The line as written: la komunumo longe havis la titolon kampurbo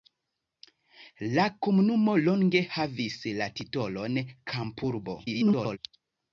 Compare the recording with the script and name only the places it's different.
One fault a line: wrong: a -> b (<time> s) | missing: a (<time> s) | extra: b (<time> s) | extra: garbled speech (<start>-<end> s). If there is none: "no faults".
extra: garbled speech (5.2-5.8 s)